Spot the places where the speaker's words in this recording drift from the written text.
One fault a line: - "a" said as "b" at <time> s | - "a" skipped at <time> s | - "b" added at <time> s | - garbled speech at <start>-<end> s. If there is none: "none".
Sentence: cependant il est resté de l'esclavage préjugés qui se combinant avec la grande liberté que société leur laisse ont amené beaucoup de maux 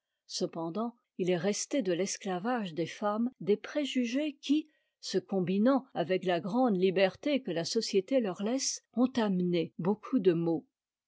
- "des femmes des" added at 2.7 s
- "la" added at 7.5 s